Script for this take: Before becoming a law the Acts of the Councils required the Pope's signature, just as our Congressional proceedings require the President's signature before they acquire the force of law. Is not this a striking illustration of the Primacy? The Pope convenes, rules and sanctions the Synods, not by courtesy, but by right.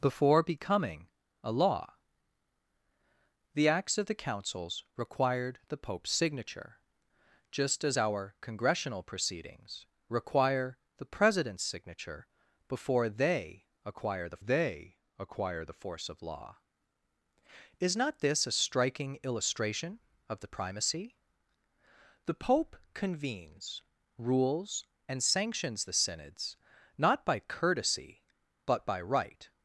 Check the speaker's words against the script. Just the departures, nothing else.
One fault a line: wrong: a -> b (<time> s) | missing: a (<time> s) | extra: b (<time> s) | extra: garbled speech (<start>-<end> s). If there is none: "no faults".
extra: they acquire the (14.4 s)